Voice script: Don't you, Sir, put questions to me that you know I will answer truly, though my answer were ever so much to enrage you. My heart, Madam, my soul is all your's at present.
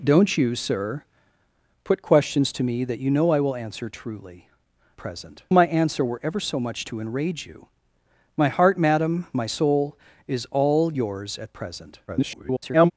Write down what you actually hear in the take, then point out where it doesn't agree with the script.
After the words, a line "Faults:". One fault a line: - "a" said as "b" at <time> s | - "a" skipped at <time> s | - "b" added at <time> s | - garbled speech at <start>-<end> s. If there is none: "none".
Don't you, Sir, put questions to me that you know I will answer truly, present my answer were ever so much to enrage you. My heart, Madam, my soul is all your's at present. [garbled]
Faults:
- "though" said as "present" at 5.0 s
- garbled speech at 12.1-12.9 s